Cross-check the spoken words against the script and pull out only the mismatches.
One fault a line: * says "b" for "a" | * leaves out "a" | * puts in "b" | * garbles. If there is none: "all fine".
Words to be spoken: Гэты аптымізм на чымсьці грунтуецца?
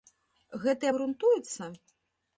* leaves out "аптымізм на чымсьці"